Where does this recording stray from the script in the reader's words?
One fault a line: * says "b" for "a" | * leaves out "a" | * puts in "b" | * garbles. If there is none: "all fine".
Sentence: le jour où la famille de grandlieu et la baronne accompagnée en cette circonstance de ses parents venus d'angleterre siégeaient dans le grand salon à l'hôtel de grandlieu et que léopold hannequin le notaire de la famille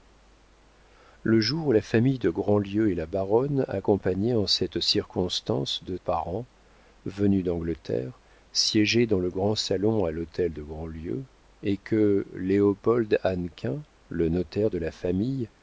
* leaves out "ses"